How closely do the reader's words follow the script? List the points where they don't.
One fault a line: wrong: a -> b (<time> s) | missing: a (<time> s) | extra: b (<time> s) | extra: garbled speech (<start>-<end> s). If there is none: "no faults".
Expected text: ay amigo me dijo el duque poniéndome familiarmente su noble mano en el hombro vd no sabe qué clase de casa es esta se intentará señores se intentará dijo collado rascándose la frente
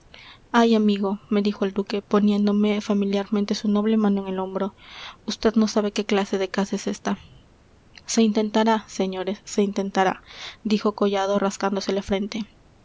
no faults